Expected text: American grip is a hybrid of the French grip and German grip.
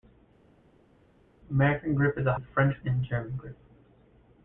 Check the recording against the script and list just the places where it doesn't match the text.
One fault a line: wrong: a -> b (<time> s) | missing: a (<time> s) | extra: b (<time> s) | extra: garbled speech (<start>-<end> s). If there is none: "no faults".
missing: hybrid (2.4 s)
missing: grip (2.8 s)